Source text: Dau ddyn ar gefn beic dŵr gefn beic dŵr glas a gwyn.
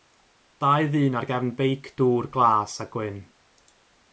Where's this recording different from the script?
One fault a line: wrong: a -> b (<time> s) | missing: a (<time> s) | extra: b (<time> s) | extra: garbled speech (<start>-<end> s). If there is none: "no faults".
missing: gefn beic dŵr (2.3 s)